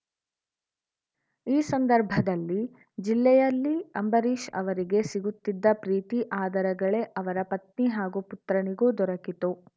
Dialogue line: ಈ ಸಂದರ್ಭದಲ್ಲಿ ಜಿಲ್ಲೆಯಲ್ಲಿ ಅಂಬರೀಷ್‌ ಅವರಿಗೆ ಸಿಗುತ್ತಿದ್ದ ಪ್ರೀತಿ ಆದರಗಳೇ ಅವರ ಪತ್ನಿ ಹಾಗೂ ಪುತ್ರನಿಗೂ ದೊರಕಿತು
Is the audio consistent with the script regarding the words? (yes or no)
yes